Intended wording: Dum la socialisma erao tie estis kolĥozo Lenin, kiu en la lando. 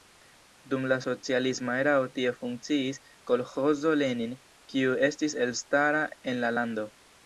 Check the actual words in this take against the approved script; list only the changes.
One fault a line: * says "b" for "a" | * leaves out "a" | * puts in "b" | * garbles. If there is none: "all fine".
* says "funkciis" for "estis"
* puts in "estis elstara"